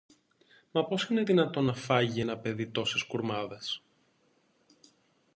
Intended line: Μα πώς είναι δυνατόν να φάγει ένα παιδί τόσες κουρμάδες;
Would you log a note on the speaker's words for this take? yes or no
no